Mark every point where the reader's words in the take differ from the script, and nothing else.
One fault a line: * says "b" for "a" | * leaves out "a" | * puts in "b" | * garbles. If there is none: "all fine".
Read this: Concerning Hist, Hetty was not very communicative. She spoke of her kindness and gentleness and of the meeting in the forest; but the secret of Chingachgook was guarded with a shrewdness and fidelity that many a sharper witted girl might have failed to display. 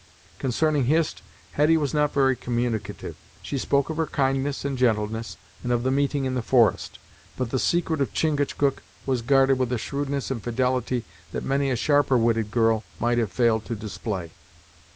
all fine